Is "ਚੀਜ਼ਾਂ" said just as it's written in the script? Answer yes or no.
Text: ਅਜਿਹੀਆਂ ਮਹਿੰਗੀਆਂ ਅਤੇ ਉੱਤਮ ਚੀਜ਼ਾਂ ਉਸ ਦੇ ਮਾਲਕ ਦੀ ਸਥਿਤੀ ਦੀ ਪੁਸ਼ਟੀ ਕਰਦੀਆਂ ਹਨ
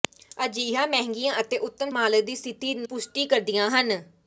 no